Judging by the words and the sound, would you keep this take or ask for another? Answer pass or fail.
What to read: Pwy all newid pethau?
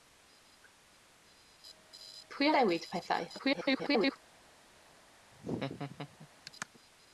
fail